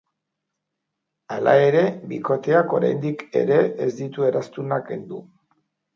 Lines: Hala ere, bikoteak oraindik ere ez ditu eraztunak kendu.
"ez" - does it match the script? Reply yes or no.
yes